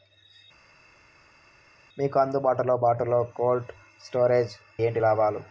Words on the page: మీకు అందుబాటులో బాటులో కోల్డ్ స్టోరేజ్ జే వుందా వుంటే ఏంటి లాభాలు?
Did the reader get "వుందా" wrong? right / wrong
wrong